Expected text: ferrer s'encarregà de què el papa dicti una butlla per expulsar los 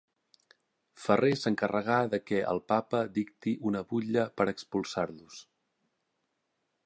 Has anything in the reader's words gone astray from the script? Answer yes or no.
no